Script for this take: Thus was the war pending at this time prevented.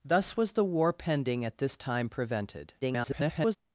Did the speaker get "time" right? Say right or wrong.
right